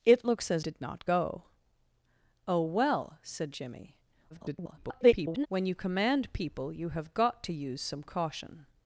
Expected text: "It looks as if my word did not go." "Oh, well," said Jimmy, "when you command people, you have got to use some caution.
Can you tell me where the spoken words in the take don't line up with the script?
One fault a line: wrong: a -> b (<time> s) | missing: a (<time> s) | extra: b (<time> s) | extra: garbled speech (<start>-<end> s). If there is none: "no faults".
missing: if my word (0.7 s)
extra: garbled speech (4.3-5.5 s)